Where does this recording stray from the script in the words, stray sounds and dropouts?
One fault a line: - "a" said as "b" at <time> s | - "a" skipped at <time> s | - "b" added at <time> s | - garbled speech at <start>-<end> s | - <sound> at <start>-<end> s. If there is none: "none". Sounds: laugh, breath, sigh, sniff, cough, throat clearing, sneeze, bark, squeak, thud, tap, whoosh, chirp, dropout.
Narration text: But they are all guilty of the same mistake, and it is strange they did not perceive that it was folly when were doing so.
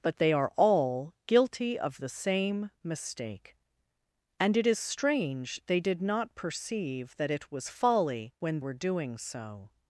none